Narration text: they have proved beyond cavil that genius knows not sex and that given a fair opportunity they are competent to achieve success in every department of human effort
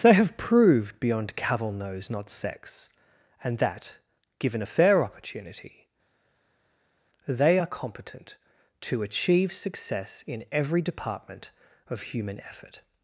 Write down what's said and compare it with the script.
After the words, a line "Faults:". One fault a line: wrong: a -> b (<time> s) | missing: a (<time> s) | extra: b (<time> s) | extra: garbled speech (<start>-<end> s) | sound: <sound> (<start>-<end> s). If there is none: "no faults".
they have proved beyond cavil knows not sex and that given a fair opportunity they are competent to achieve success in every department of human effort
Faults:
missing: that genius (1.7 s)